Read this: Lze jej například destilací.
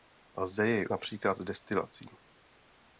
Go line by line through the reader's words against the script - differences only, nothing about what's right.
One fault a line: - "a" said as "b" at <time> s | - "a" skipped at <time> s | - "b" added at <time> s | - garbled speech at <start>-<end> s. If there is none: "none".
none